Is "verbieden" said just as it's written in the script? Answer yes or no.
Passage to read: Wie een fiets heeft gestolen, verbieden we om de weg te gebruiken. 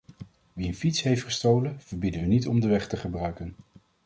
yes